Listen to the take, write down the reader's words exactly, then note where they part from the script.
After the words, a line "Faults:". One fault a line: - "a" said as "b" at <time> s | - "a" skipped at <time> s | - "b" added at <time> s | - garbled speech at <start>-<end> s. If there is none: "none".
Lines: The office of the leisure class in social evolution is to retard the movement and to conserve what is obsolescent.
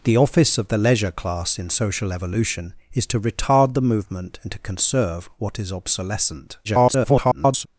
The office of the leisure class in social evolution is to retard the movement and to conserve what is obsolescent. [garbled]
Faults:
- garbled speech at 6.6-7.7 s